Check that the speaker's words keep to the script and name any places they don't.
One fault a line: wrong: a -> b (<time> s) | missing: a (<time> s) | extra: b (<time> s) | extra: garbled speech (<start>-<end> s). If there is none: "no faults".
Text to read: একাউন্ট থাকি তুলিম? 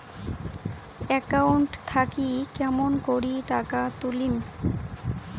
extra: কেমন করি টাকা (2.6 s)